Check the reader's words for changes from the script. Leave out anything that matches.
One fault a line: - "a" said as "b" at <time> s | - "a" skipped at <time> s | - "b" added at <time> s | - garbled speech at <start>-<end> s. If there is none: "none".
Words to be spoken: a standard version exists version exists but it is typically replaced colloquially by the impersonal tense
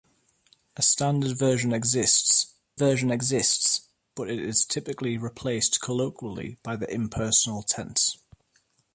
none